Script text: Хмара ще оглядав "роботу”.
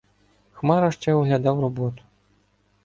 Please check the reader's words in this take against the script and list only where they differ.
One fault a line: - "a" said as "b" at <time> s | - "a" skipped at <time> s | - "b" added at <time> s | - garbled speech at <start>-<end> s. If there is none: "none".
none